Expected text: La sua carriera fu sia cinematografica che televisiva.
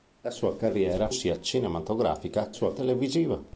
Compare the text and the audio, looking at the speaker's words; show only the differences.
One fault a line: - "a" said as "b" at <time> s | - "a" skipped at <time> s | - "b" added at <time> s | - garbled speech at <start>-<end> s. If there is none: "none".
- "fu" skipped at 1.1 s
- "che" said as "sua" at 2.5 s